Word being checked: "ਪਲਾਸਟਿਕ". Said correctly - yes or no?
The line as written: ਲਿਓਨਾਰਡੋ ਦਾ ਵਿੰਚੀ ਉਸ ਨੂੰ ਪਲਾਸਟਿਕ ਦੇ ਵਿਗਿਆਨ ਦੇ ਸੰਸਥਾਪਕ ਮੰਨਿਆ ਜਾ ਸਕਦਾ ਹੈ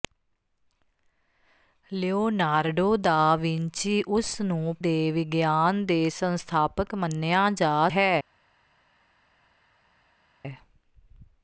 no